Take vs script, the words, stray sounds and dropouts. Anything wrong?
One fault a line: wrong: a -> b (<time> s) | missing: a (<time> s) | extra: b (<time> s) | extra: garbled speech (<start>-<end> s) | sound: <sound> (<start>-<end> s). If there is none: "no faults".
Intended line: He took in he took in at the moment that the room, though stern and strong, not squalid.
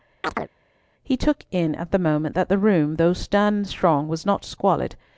sound: chirp (0.2-0.5 s)
missing: he took in (1.8 s)
extra: was (4.1 s)